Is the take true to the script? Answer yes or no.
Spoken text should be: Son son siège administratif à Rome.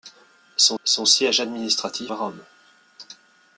yes